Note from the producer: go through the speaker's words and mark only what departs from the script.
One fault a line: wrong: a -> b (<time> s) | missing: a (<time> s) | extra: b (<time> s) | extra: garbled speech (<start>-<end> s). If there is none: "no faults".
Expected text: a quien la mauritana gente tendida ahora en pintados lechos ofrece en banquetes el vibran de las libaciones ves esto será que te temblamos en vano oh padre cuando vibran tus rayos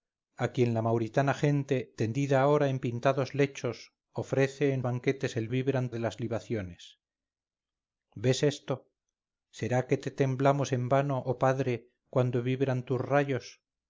no faults